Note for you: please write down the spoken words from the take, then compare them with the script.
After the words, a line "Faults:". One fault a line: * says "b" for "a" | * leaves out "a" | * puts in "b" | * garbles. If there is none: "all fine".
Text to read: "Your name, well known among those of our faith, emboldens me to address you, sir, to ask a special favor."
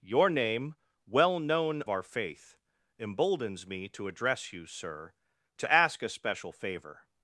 "Your name, well known our faith, emboldens me to address you, sir, to ask a special favor."
Faults:
* leaves out "among those of"